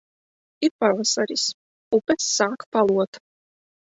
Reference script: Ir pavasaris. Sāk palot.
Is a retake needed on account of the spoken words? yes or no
yes